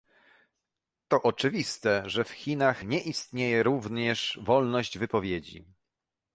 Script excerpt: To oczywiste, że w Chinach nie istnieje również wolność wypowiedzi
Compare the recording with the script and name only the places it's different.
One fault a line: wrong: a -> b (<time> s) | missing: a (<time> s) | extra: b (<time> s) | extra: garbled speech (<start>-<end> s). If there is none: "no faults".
no faults